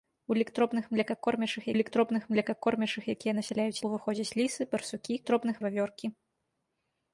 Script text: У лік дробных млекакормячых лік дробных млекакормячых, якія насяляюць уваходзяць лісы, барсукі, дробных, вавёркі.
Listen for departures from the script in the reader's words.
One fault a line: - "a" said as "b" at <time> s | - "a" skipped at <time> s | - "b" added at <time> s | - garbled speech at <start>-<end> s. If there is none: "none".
none